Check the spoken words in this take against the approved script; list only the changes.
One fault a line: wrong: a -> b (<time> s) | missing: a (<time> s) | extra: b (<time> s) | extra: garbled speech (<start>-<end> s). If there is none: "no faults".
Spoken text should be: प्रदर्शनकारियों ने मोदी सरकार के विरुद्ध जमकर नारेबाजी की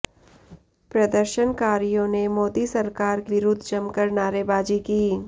missing: के (3.2 s)